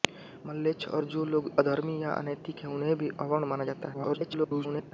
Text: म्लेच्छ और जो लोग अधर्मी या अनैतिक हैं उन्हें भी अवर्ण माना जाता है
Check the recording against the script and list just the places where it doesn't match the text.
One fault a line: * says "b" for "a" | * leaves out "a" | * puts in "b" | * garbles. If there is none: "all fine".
* garbles